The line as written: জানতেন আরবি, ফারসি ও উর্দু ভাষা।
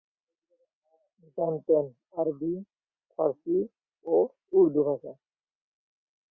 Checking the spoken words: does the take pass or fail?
pass